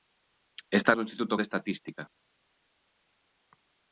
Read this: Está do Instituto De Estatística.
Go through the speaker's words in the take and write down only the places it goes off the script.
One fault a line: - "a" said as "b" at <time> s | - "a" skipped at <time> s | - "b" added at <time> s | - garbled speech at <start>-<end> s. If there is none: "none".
none